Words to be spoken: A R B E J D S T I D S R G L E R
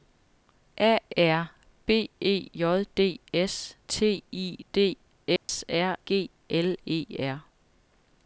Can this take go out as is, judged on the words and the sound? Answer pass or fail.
fail